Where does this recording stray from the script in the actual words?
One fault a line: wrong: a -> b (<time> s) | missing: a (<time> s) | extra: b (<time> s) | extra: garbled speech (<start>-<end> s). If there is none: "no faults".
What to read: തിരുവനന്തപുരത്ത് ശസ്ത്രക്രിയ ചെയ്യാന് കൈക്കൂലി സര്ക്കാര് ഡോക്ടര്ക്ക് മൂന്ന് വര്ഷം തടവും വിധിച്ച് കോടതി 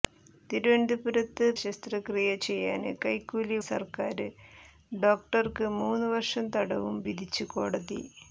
no faults